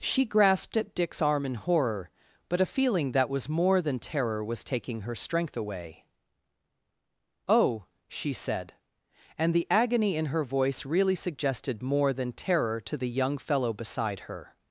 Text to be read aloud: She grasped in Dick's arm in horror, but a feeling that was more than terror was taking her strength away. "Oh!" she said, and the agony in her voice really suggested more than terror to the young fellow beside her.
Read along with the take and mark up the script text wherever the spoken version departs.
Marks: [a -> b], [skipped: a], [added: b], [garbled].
She grasped [in -> at] Dick's arm in horror, but a feeling that was more than terror was taking her strength away. "Oh!" she said, and the agony in her voice really suggested more than terror to the young fellow beside her.